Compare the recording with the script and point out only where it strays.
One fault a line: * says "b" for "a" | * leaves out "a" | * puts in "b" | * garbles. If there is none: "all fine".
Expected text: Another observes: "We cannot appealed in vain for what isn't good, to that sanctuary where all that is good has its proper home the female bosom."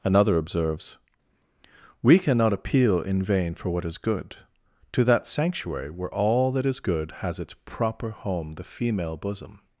* says "appeal" for "appealed"
* says "is" for "isn't"